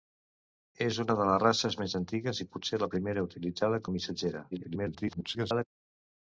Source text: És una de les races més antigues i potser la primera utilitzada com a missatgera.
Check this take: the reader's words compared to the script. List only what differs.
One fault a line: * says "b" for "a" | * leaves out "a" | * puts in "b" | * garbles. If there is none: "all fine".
* leaves out "com"
* garbles